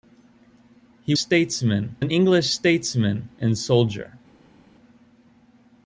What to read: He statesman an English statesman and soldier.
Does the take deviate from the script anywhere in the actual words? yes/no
no